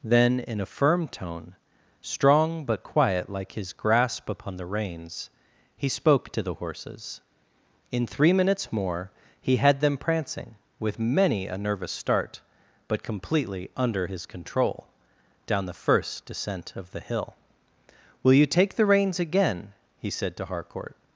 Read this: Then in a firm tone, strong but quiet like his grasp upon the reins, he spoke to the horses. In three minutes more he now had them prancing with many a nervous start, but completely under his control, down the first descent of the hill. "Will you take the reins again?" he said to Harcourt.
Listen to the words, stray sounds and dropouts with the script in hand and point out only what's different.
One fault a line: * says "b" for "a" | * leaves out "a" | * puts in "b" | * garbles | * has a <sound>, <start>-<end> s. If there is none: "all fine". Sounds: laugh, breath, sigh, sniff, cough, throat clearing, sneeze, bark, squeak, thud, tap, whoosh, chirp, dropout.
* leaves out "now"